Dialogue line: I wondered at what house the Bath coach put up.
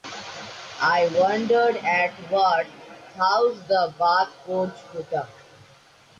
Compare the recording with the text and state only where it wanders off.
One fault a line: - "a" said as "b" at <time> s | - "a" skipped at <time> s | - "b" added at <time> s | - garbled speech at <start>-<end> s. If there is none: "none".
none